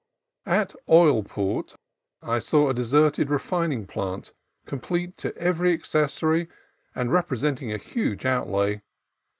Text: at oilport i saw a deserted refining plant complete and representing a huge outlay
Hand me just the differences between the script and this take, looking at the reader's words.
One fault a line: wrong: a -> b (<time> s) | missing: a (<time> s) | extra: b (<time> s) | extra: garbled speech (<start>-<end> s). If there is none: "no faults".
extra: to every accessory (5.2 s)